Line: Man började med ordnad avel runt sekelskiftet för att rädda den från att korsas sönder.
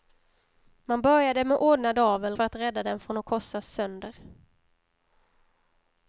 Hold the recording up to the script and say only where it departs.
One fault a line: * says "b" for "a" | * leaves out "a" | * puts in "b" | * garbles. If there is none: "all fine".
* leaves out "runt sekelskiftet"